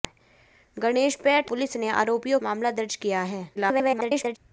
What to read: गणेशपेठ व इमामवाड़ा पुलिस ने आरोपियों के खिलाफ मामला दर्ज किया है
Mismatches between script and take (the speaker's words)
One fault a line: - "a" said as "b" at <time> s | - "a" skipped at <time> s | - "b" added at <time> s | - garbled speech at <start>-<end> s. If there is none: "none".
- "व इमामवाड़ा" skipped at 1.5 s
- "के खिलाफ" skipped at 2.4 s
- garbled speech at 3.6-4.4 s